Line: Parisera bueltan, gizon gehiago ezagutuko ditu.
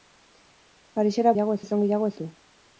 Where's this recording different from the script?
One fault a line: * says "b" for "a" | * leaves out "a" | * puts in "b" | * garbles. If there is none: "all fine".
* says "gehiago" for "bueltan"
* leaves out "ezagutuko"